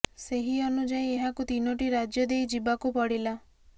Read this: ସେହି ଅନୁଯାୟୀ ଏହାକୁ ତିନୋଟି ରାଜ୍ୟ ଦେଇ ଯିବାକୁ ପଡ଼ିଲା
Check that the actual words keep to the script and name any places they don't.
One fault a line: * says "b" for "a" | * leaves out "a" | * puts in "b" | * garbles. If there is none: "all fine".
all fine